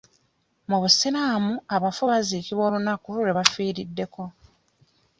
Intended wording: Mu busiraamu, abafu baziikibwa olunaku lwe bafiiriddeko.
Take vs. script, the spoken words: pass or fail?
pass